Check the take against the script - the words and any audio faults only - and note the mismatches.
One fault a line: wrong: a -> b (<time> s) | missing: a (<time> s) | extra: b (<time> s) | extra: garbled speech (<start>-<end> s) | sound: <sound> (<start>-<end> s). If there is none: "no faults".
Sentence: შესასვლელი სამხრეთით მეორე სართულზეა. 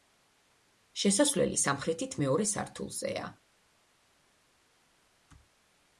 no faults